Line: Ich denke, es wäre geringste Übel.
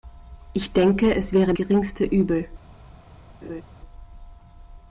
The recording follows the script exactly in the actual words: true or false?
true